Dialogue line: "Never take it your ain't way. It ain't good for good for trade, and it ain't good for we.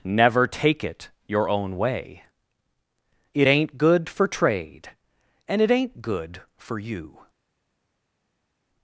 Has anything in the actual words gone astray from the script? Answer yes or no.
yes